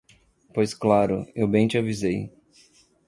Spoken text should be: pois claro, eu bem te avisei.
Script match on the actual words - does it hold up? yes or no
yes